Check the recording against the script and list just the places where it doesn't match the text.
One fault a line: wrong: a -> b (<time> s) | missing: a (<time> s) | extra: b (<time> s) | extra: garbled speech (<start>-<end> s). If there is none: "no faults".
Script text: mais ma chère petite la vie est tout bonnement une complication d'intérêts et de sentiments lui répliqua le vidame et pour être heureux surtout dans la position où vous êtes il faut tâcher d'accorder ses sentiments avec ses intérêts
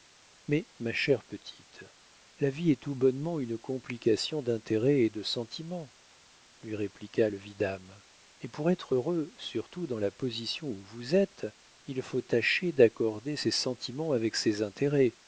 no faults